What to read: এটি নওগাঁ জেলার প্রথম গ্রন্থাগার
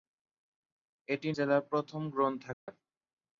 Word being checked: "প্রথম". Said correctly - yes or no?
yes